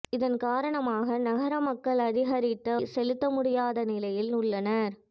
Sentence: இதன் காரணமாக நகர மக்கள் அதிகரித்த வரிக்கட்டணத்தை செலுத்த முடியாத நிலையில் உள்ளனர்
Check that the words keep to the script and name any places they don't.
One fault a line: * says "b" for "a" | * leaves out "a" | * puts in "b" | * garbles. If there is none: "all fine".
* leaves out "வரிக்கட்டணத்தை"